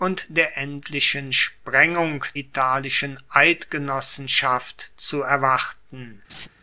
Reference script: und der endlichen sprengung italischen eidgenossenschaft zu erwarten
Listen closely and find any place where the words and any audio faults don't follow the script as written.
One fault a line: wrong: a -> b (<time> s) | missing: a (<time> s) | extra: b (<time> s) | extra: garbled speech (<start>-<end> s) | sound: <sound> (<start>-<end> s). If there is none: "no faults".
sound: laugh (6.3-6.5 s)